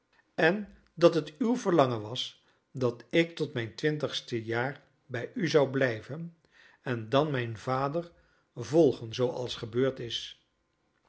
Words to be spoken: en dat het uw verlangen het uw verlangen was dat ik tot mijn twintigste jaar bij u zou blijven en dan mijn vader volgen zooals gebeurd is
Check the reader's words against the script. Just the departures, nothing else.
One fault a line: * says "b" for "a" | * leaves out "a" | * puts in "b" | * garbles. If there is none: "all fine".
* leaves out "het uw verlangen"